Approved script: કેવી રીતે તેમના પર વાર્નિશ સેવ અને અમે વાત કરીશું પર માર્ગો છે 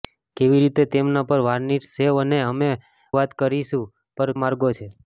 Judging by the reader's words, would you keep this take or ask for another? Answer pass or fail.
pass